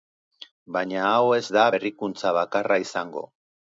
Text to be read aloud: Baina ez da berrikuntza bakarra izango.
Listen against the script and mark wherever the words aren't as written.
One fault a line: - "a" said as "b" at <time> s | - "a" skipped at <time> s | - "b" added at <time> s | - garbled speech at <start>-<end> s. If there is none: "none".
- "hau" added at 1.1 s